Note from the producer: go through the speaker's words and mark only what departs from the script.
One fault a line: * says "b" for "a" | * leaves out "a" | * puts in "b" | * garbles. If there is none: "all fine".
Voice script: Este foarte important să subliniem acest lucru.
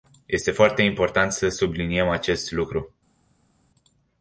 all fine